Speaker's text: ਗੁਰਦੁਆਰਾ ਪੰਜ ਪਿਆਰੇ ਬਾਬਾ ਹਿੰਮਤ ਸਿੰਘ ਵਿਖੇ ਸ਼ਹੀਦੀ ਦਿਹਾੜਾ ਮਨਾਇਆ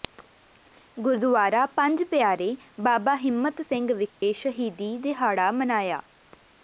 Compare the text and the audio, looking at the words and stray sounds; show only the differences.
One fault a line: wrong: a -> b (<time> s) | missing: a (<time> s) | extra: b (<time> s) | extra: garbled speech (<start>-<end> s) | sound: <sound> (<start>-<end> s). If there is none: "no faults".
sound: dropout (4.1-4.2 s)